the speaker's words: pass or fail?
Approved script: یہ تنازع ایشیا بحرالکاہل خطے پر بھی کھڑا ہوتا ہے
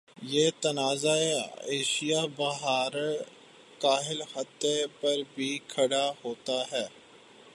pass